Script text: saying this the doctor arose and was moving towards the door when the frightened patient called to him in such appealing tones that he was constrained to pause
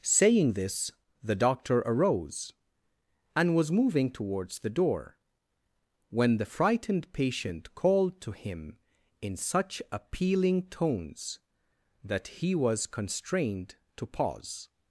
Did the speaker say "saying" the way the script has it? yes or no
yes